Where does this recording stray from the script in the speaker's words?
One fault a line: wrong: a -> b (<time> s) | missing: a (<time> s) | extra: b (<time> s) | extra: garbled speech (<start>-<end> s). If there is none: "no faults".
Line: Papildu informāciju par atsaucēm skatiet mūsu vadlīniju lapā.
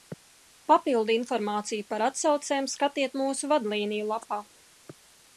no faults